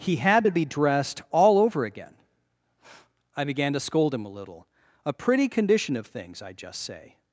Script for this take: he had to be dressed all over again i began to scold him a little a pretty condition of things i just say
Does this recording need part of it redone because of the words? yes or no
no